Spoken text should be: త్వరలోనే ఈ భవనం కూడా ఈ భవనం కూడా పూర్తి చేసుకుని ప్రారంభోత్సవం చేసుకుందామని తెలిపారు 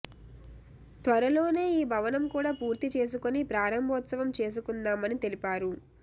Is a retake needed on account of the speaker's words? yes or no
yes